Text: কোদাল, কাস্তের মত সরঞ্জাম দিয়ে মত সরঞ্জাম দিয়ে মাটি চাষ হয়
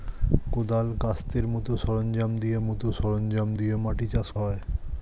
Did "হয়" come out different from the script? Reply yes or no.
no